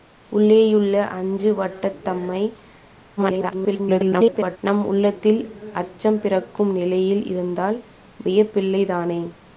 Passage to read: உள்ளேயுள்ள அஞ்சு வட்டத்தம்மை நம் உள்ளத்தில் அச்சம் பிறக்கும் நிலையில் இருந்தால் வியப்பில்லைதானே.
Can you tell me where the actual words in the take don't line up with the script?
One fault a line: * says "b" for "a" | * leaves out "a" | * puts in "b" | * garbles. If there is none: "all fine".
* garbles